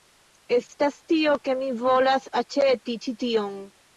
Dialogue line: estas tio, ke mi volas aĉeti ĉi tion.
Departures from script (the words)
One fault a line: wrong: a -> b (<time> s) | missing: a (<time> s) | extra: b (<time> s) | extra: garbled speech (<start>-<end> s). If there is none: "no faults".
no faults